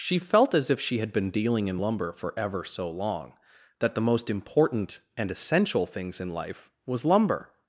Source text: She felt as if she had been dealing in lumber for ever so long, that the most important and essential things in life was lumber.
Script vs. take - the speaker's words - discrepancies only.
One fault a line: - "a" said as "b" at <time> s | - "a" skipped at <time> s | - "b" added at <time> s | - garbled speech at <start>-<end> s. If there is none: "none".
none